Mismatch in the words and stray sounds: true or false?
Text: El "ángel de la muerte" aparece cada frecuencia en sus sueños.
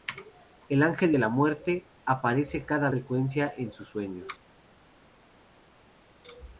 false